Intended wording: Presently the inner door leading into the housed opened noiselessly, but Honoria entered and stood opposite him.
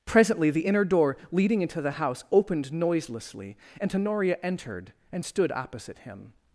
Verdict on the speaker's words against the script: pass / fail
fail